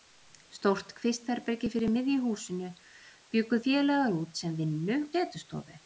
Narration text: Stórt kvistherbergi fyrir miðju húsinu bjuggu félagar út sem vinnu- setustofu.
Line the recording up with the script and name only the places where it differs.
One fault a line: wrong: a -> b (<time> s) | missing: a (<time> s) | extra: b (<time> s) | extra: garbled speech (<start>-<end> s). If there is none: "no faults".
no faults